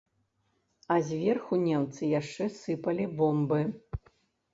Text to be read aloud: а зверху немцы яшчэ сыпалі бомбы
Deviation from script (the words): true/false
false